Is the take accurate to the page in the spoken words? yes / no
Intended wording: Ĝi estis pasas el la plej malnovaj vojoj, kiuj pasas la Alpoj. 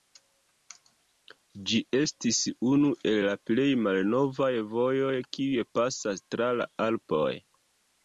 no